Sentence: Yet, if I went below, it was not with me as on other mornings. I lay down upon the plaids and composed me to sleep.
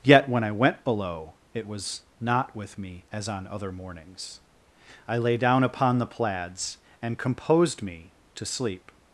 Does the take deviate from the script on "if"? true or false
true